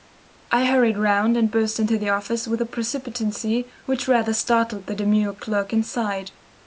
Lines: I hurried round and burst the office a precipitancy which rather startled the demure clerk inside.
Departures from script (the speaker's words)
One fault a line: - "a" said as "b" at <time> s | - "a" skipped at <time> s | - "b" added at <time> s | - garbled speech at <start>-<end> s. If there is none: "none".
- "into" added at 1.8 s
- "with" added at 2.5 s